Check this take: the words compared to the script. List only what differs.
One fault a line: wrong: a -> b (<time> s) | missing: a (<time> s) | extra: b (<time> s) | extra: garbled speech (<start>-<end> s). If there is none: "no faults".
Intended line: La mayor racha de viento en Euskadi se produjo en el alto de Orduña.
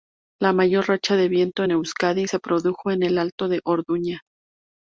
no faults